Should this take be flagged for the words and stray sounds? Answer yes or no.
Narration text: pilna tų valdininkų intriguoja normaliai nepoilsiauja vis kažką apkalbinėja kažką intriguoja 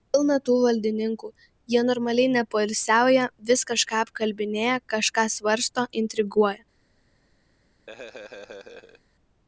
yes